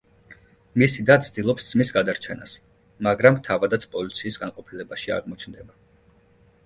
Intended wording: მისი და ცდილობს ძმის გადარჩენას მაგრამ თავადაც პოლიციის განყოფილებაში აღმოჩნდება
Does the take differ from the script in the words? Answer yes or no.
no